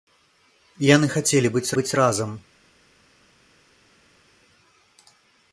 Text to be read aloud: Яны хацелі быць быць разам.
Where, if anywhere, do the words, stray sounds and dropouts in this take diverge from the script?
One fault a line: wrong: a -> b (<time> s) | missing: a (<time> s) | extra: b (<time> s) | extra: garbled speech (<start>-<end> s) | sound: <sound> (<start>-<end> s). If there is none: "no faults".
no faults